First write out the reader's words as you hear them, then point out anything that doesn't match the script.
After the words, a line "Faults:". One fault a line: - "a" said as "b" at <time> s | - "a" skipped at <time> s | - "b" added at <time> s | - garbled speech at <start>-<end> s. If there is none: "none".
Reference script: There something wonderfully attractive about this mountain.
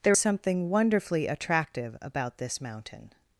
There something wonderfully attractive about this mountain.
Faults:
none